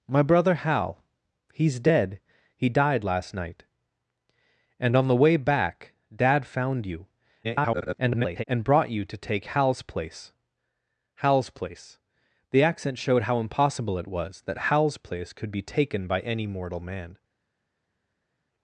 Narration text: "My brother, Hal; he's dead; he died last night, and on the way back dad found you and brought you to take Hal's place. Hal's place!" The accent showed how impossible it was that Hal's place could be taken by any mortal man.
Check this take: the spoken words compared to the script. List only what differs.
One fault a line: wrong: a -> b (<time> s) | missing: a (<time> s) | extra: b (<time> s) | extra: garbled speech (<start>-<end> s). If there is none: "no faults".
extra: garbled speech (7.4-8.4 s)